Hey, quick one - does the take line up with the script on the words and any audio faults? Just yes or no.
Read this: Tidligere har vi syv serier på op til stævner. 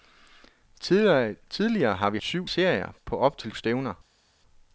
yes